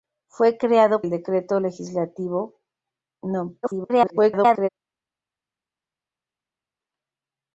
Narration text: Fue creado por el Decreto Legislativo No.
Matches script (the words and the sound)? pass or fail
fail